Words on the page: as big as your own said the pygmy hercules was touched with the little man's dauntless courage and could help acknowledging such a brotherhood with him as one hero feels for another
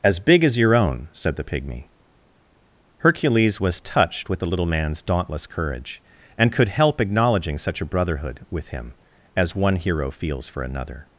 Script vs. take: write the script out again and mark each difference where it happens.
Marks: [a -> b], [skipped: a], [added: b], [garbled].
as big as your own said the pygmy hercules was touched with the little man's dauntless courage and could help acknowledging such a brotherhood with him as one hero feels for another